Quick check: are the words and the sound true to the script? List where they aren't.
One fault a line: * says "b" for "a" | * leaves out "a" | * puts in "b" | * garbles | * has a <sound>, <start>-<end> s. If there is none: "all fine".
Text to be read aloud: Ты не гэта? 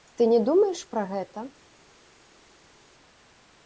* puts in "думаеш пра"